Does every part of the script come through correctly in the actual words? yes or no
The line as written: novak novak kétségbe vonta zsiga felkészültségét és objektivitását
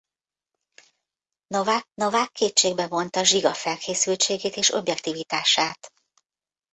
yes